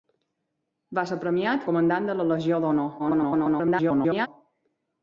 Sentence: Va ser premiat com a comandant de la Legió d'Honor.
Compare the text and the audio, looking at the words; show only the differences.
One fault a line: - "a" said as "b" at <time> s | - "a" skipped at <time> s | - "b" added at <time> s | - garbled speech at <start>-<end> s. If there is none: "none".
- "com" skipped at 1.7 s
- garbled speech at 3.0-4.3 s